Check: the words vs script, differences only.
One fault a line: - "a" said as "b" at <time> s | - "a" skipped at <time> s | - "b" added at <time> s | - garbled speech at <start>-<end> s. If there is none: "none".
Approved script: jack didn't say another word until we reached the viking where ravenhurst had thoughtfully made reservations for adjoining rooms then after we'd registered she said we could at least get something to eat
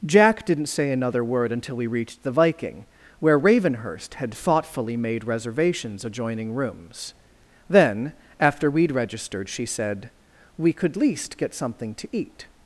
- "for" skipped at 6.0 s
- "at" skipped at 11.0 s